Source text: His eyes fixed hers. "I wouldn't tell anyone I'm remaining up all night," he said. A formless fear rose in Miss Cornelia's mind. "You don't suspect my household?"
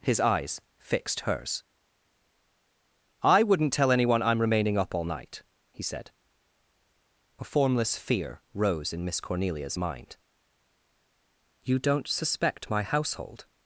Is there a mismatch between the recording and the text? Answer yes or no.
no